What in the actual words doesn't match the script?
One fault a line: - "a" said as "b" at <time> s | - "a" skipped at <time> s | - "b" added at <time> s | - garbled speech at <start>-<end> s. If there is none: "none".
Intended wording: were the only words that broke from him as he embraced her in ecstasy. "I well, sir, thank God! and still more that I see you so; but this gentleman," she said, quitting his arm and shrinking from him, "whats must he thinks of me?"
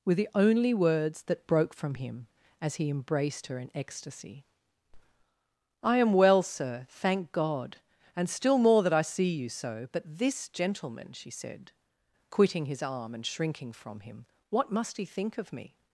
- "am" added at 6.0 s
- "whats" said as "what" at 14.5 s
- "thinks" said as "think" at 15.0 s